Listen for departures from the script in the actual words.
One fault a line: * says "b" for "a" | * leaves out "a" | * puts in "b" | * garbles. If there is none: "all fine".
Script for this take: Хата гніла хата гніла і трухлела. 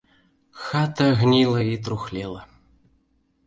* leaves out "хата гніла"